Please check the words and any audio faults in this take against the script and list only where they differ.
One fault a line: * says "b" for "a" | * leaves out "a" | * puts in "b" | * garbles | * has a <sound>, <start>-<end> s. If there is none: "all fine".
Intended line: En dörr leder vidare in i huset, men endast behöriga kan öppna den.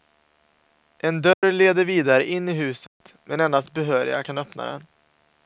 * has a dropout, 1.3-1.4 s
* has a dropout, 2.9-3.0 s